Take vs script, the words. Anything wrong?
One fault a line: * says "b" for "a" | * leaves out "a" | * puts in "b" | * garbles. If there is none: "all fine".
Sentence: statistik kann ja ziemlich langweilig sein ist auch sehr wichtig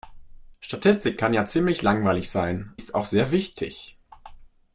all fine